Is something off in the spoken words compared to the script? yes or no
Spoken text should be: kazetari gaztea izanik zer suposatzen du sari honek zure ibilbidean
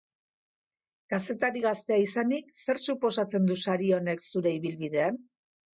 no